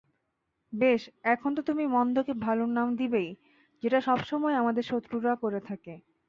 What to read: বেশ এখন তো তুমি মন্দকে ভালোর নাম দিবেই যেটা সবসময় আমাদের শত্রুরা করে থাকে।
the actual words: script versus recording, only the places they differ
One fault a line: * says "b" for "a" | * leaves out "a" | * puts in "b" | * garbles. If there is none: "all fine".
all fine